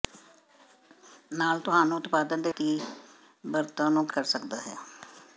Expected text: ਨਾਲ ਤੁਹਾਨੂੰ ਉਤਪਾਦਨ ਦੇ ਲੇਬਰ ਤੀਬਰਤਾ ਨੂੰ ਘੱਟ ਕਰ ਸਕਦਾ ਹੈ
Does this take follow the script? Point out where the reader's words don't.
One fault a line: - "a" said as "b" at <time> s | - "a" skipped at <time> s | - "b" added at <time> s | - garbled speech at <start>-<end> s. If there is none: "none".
- "ਲੇਬਰ" skipped at 2.5 s
- "ਘੱਟ" skipped at 4.1 s